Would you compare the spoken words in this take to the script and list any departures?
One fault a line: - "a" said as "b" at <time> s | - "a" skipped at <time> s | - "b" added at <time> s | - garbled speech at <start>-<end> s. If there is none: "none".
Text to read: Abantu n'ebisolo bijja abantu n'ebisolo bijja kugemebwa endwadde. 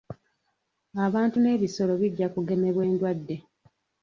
- "abantu n'ebisolo bijja" skipped at 2.3 s